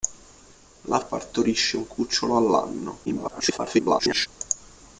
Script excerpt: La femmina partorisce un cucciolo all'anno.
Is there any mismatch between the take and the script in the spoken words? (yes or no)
yes